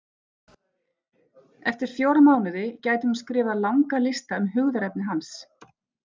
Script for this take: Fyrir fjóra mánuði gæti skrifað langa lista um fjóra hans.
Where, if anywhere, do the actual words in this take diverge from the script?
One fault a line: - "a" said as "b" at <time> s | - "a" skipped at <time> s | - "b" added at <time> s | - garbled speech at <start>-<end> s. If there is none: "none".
- "Fyrir" said as "Eftir" at 1.7 s
- "hún" added at 3.1 s
- "fjóra" said as "hugðarefni" at 4.5 s